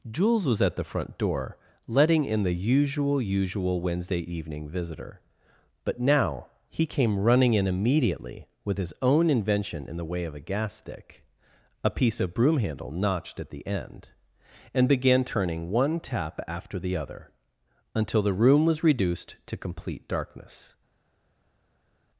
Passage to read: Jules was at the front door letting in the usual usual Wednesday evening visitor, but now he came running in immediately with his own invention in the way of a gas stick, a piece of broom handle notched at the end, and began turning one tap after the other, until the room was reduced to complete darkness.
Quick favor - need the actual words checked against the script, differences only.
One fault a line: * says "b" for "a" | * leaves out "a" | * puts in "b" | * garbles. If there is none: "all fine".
all fine